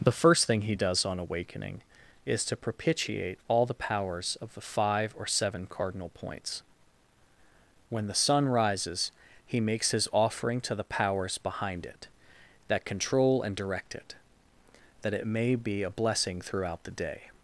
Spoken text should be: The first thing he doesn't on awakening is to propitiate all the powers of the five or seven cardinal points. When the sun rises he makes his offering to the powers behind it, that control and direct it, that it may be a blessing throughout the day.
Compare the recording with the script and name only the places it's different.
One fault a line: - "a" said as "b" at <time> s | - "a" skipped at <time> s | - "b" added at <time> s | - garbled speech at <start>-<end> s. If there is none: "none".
- "doesn't" said as "does" at 0.7 s